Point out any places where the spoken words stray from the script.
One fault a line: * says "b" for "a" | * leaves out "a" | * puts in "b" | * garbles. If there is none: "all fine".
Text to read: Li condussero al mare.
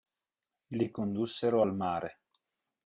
all fine